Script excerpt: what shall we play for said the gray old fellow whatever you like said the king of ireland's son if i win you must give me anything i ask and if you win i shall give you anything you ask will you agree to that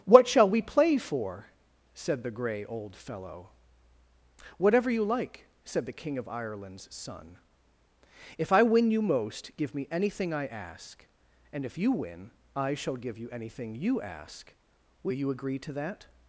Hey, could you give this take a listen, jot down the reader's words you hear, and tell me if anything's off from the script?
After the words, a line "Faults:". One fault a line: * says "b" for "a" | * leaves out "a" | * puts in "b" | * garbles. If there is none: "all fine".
what shall we play for said the gray old fellow whatever you like said the king of ireland's son if i win you most give me anything i ask and if you win i shall give you anything you ask will you agree to that
Faults:
* says "most" for "must"